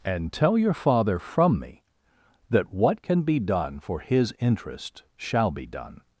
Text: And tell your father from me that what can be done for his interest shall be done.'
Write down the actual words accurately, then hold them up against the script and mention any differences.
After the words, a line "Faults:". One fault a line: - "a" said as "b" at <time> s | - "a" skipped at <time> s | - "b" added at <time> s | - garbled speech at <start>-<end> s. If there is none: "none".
And tell your father from me that what can be done for his interest shall be done.'
Faults:
none